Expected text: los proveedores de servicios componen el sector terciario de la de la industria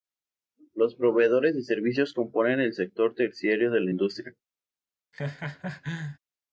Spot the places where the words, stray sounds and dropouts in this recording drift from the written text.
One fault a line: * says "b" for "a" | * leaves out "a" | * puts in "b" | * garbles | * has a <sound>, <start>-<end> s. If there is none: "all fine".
* leaves out "de la"
* has a laugh, 5.1-6.2 s